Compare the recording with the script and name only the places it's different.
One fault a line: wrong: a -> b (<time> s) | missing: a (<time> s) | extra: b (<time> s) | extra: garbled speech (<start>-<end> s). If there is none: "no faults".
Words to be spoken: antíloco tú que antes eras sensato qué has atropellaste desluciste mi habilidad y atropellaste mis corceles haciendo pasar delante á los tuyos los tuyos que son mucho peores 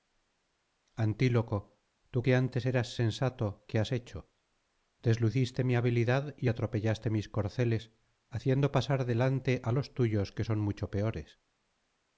wrong: atropellaste -> hecho (3.9 s)
missing: los tuyos (10.3 s)